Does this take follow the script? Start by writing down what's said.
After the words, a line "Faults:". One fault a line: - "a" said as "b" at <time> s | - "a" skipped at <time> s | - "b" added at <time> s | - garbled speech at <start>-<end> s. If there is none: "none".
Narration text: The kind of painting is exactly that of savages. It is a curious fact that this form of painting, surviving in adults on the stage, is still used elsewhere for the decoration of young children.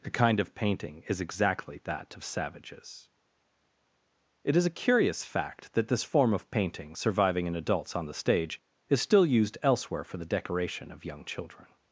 The kind of painting is exactly that of savages. It is a curious fact that this form of painting, surviving in adults on the stage, is still used elsewhere for the decoration of young children.
Faults:
none